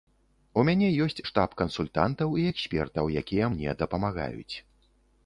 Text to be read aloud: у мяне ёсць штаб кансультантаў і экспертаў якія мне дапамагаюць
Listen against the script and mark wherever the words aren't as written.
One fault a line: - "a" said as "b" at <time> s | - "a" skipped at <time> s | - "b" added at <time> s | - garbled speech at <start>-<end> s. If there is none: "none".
none